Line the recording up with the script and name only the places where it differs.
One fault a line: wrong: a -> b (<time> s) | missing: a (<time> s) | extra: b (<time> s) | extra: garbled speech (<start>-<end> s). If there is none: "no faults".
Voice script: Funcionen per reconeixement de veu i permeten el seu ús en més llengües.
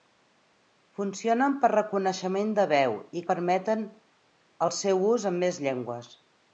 no faults